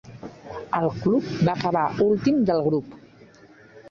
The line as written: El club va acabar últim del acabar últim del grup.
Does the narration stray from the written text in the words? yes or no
yes